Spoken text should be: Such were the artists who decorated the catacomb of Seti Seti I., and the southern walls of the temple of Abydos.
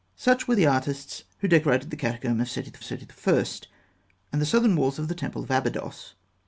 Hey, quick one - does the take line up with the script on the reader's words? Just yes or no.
yes